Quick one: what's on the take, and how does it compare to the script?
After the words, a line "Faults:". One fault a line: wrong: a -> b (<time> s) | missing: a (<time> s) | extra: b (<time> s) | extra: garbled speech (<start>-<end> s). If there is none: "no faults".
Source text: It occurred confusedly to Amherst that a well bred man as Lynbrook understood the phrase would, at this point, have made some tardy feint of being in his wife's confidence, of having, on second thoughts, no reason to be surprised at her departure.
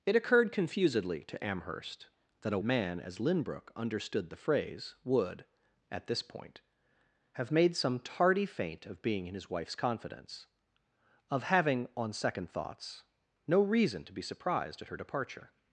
It occurred confusedly to Amherst that a man as Lynbrook understood the phrase would, at this point, have made some tardy feint of being in his wife's confidence, of having, on second thoughts, no reason to be surprised at her departure.
Faults:
missing: well bred (2.6 s)